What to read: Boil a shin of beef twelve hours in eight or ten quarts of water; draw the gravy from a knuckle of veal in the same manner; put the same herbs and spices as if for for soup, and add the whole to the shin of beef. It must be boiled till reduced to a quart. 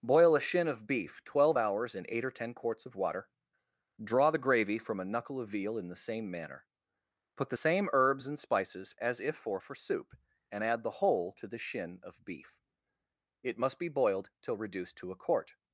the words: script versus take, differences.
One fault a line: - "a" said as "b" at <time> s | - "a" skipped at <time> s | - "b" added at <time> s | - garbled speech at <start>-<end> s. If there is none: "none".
none